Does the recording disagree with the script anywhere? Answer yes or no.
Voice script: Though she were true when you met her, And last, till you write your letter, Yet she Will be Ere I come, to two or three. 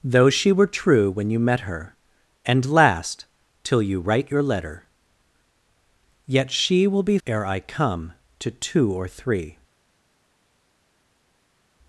no